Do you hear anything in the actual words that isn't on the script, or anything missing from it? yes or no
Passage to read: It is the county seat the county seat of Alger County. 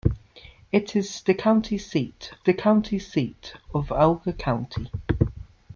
no